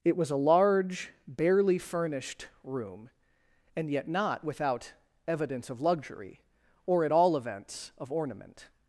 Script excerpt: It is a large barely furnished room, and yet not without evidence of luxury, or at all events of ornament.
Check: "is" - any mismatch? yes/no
yes